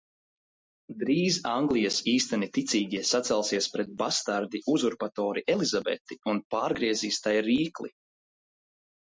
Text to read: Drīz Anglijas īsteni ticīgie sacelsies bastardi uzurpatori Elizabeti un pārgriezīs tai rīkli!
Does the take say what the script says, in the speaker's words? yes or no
no